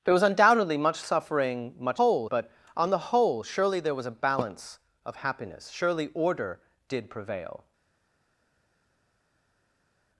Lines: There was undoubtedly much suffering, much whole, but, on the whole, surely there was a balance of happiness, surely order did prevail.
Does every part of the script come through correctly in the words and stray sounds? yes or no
yes